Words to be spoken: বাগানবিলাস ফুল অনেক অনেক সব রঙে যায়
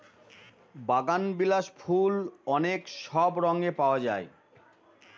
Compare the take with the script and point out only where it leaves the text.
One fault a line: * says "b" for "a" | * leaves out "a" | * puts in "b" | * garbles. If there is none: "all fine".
* leaves out "অনেক"
* puts in "পাওয়া"